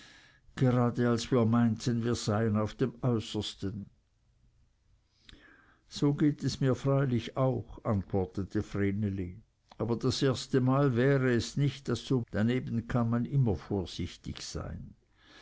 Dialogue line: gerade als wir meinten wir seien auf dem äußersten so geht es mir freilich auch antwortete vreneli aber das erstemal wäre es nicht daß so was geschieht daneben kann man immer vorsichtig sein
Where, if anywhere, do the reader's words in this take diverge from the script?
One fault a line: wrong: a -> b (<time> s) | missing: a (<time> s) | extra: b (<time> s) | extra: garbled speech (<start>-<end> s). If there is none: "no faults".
missing: was geschieht (12.2 s)